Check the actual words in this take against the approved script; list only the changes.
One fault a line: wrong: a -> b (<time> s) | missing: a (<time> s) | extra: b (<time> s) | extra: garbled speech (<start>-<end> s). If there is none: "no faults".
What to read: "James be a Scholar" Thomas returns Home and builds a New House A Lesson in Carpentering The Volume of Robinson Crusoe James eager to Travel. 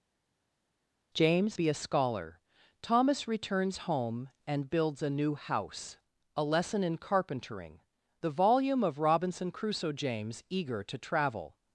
no faults